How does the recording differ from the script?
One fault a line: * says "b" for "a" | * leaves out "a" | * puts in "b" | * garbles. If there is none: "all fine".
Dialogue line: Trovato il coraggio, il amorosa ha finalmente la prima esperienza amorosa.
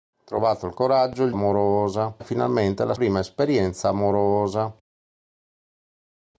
all fine